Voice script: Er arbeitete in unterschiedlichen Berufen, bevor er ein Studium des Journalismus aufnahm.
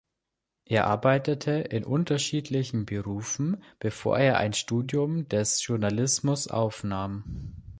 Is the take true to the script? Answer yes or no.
yes